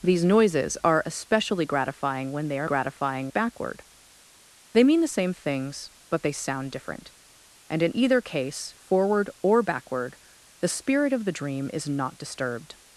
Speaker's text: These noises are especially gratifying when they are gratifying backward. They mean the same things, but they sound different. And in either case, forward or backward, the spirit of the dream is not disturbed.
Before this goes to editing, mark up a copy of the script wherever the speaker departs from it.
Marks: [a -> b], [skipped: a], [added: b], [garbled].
These noises are especially gratifying when they are gratifying backward. They mean the same things, but they sound different. And in either case, forward or backward, the spirit of the dream is not disturbed.